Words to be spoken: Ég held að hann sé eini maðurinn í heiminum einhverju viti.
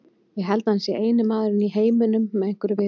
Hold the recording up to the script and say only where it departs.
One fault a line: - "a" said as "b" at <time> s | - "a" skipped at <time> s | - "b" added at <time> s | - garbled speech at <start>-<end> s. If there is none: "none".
- "með" added at 2.3 s